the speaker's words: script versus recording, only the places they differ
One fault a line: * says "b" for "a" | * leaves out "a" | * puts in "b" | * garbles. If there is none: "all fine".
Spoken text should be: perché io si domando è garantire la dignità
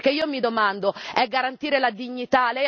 * says "mi" for "si"